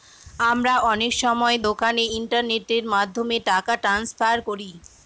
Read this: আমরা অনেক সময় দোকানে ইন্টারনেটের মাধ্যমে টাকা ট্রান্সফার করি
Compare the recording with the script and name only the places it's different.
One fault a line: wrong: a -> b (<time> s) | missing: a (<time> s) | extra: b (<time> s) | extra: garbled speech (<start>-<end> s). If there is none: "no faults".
no faults